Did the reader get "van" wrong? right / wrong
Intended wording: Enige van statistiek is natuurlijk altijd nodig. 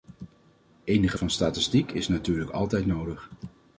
right